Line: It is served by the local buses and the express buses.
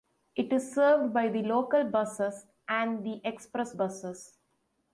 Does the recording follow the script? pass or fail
pass